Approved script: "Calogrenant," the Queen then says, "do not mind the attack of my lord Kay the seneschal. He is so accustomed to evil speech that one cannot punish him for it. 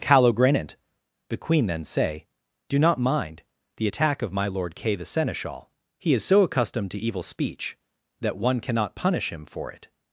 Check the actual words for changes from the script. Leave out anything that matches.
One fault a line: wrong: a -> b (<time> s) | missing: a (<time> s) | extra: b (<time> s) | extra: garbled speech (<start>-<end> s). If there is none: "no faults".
wrong: says -> say (1.8 s)